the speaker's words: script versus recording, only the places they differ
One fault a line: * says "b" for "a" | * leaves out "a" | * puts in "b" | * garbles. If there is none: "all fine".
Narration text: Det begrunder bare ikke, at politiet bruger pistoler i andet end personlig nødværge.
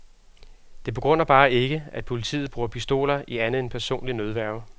all fine